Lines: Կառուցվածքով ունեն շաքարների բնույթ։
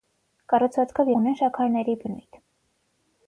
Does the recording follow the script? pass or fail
pass